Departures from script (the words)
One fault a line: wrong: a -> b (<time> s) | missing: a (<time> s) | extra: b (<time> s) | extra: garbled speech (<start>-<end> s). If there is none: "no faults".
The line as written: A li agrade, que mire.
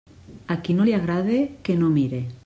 extra: qui no (0.6 s)
extra: no (1.7 s)